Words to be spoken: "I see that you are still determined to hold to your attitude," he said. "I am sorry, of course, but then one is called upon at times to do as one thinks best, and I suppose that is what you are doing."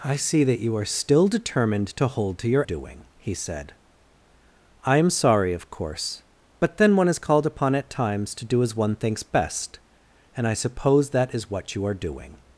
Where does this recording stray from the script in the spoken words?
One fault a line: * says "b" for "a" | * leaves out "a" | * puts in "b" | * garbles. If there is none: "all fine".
* says "doing" for "attitude"